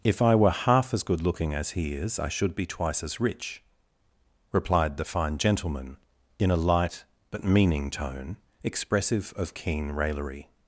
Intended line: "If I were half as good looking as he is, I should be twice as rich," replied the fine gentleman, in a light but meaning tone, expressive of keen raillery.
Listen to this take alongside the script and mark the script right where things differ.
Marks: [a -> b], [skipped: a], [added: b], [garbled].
"If I were half as good looking as he is, I should be twice as rich," replied the fine gentleman, in a light but meaning tone, expressive of keen raillery.